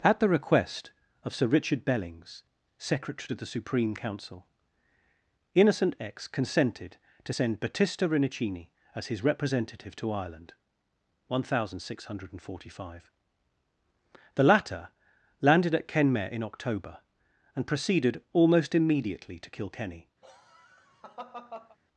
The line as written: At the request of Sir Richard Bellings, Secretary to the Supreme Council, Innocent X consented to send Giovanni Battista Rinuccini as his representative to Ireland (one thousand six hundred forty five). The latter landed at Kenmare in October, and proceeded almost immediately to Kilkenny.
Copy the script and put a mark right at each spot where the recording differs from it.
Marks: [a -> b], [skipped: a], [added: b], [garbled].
At the request of Sir Richard Bellings, Secretary to the Supreme Council, Innocent X consented to send [skipped: Giovanni] Battista Rinuccini as his representative to Ireland (one thousand six hundred forty five). The latter landed at Kenmare in October, and proceeded almost immediately to Kilkenny.